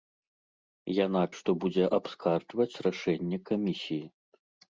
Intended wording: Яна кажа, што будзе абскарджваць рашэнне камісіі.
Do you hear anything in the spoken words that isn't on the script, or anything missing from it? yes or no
yes